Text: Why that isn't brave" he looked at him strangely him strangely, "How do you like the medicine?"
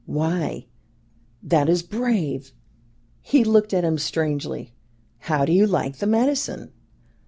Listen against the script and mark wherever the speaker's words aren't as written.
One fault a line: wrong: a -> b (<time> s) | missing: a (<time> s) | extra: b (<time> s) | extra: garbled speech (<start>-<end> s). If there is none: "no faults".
wrong: isn't -> is (1.7 s)
missing: him strangely (4.7 s)